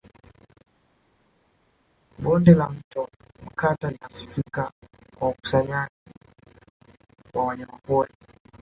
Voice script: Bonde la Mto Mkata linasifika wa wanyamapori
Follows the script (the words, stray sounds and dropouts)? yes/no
yes